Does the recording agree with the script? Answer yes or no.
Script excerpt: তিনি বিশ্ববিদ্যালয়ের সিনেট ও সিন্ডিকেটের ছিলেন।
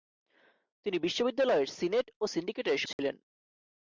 yes